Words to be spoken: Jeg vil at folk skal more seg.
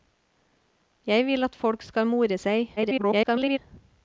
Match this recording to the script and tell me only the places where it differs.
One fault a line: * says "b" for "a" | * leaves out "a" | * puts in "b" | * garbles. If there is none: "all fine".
* garbles